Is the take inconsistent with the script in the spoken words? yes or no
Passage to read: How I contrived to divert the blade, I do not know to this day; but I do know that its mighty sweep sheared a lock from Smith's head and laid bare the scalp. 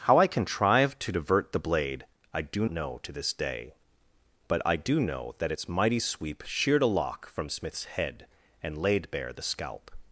yes